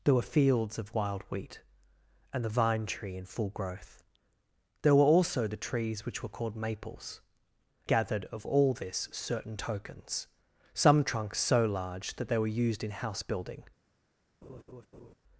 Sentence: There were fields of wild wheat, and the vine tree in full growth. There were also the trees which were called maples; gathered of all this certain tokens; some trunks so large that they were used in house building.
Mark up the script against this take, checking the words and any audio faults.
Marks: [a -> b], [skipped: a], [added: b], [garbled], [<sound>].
There were fields of wild wheat, and the vine tree in full growth. There were also the trees which were called maples; gathered of all this certain tokens; some trunks so large that they were used in house building. [laugh]